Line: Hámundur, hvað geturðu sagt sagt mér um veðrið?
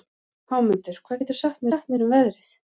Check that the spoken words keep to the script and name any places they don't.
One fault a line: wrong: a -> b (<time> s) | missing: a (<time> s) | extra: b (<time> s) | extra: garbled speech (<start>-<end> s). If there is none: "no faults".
no faults